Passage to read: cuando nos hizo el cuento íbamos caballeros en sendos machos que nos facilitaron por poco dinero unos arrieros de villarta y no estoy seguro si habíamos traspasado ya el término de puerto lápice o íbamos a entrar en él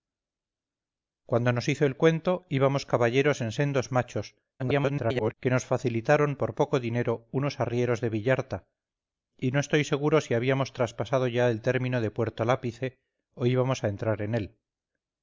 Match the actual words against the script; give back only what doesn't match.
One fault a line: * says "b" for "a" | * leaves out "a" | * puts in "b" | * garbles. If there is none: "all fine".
* garbles